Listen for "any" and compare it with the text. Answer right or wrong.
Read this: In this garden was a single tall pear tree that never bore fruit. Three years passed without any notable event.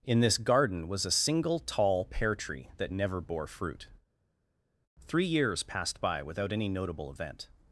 right